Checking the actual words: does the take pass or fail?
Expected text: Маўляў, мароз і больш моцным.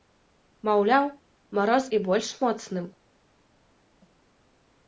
pass